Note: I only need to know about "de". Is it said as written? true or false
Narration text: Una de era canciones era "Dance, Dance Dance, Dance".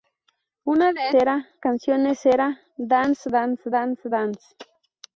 true